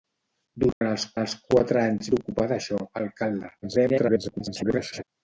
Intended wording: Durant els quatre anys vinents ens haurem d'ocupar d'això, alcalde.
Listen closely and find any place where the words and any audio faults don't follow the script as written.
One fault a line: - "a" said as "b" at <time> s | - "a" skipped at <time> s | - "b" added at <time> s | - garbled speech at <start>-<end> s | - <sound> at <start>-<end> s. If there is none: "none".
- dropout at 0.7-0.8 s
- "els" added at 1.2 s
- "vinents ens haurem" skipped at 2.1 s
- garbled speech at 3.6-5.0 s